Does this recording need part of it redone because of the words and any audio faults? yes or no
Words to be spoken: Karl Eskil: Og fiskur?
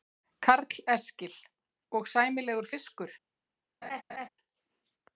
yes